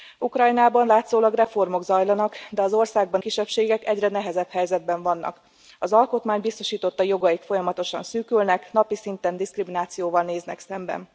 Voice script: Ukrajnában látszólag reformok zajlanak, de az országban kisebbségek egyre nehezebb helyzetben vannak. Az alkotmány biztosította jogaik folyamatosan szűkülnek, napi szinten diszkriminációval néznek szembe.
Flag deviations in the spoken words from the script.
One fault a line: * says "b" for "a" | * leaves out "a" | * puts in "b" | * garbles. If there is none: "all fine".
all fine